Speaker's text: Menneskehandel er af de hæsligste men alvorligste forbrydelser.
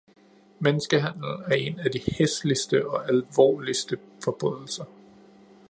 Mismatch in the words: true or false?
true